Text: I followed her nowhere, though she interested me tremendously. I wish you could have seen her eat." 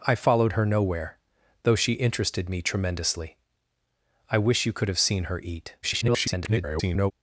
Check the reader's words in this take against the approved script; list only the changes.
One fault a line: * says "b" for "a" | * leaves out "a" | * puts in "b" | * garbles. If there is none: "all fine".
* garbles